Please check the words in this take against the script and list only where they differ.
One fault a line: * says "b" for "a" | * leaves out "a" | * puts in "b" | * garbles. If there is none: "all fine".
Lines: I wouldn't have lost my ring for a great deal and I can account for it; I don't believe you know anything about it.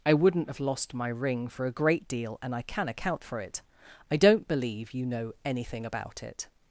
all fine